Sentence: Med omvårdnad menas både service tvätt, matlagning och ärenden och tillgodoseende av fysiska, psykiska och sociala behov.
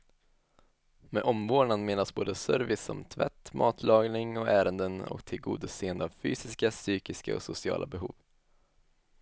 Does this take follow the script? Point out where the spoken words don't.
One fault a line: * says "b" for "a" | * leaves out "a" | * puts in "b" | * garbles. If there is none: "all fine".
* puts in "som"